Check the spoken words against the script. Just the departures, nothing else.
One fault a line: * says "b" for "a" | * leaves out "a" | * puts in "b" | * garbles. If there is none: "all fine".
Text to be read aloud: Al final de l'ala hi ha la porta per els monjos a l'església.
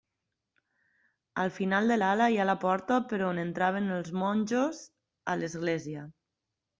* puts in "on entraven"